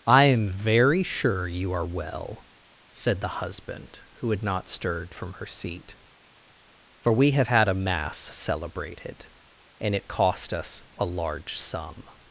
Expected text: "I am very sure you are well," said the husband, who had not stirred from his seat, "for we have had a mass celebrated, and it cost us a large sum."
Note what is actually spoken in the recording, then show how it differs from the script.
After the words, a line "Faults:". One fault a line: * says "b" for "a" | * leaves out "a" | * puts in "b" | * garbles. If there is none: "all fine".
"I am very sure you are well," said the husband, who had not stirred from her seat, "for we have had a mass celebrated, and it cost us a large sum."
Faults:
* says "her" for "his"